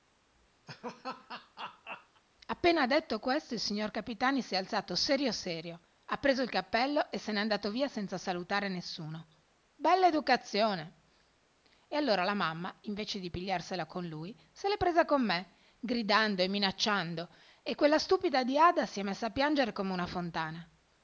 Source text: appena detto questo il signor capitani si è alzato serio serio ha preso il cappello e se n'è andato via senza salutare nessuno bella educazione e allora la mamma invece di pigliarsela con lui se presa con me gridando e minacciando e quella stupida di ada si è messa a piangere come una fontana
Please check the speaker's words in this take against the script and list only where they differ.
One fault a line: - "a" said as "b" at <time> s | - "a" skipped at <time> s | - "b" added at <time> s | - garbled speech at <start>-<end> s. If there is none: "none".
- "l'è" added at 14.7 s